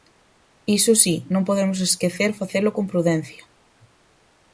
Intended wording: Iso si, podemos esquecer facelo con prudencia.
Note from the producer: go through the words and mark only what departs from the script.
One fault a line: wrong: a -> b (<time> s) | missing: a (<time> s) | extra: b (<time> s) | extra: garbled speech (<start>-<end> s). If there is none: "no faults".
extra: non (1.3 s)